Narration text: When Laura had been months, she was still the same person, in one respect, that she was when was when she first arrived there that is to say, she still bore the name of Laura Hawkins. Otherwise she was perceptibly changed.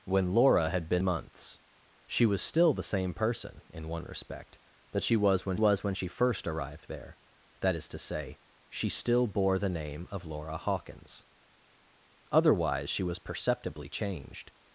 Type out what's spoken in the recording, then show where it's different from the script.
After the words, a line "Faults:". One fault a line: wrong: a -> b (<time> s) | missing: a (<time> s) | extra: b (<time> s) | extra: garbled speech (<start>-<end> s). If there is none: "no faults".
When Laura had been months, she was still the same person, in one respect, that she was when was when she first arrived there that is to say, she still bore the name of Laura Hawkins. Otherwise she was perceptibly changed.
Faults:
no faults